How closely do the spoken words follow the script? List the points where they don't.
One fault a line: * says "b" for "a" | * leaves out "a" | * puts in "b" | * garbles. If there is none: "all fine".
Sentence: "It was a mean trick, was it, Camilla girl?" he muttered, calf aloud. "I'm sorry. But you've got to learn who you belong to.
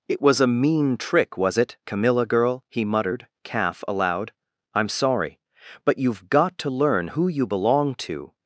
all fine